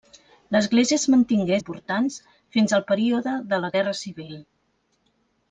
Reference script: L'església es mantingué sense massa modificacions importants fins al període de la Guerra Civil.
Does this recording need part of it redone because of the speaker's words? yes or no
yes